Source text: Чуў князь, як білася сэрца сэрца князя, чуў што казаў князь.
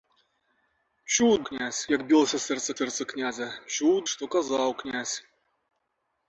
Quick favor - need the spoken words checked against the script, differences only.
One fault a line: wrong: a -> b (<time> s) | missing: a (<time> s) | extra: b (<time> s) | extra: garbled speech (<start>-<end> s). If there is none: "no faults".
no faults